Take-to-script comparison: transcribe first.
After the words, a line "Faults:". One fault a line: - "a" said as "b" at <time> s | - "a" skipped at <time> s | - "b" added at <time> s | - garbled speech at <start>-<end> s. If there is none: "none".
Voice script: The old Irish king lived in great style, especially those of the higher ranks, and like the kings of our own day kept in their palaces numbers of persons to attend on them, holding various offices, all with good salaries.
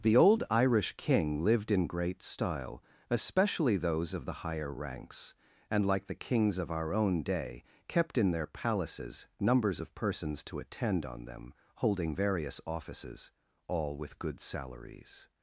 The old Irish king lived in great style, especially those of the higher ranks, and like the kings of our own day kept in their palaces numbers of persons to attend on them, holding various offices, all with good salaries.
Faults:
none